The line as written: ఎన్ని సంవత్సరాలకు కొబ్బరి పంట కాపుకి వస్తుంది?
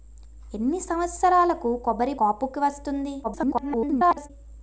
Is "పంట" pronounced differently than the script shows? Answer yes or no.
yes